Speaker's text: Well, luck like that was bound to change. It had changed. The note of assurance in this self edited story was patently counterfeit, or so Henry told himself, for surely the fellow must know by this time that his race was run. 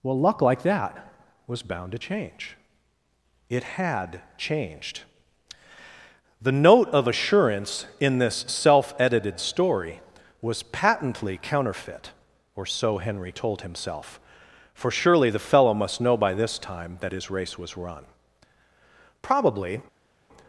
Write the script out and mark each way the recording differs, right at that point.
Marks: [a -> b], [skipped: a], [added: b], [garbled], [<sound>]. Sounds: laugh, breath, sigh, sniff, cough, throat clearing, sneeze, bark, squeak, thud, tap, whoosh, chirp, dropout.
Well, luck like that was bound to change. It had changed. The note of assurance in this self edited story was patently counterfeit, or so Henry told himself, for surely the fellow must know by this time that his race was run. [added: Probably]